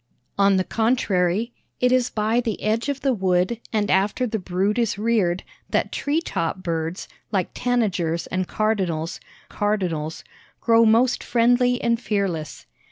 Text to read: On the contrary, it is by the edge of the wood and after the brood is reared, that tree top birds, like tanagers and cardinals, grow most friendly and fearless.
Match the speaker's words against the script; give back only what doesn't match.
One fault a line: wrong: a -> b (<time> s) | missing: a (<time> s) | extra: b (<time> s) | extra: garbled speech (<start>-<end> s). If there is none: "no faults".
extra: cardinals (9.5 s)